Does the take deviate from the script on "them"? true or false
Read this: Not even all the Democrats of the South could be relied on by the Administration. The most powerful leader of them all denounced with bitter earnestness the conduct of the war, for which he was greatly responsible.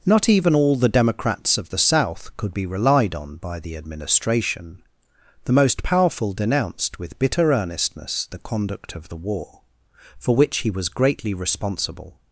true